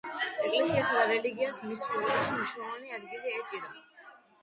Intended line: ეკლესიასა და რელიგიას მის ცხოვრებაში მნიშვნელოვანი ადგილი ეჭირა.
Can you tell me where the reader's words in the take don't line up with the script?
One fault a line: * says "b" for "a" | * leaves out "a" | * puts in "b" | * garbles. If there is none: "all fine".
all fine